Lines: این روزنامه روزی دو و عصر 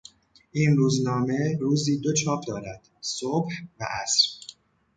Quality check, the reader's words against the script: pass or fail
fail